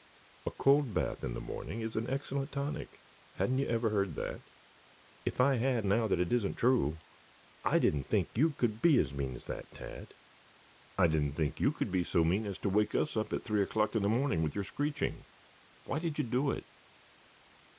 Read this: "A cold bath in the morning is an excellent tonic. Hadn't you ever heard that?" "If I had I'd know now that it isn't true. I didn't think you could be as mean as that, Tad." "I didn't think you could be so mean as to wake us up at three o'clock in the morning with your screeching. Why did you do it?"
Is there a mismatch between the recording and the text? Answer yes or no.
yes